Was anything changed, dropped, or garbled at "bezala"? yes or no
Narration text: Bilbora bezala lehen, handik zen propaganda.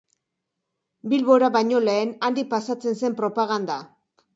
yes